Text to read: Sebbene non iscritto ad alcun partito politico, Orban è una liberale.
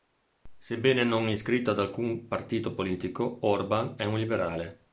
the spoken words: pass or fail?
fail